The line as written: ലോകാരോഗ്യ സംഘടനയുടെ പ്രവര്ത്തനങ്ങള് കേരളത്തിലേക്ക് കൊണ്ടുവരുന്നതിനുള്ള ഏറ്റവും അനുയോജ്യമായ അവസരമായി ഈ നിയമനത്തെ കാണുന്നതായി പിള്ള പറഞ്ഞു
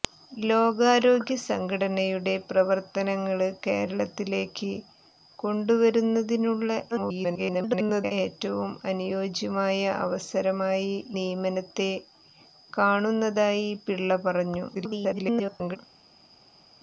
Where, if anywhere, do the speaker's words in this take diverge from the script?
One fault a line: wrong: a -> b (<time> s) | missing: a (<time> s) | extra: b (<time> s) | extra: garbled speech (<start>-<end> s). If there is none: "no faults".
extra: garbled speech (6.9-8.1 s)
missing: ഈ (11.0 s)
extra: garbled speech (14.7-15.8 s)